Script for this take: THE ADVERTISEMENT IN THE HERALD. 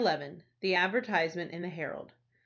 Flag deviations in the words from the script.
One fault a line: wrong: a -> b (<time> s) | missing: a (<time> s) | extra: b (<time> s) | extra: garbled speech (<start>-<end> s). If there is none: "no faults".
no faults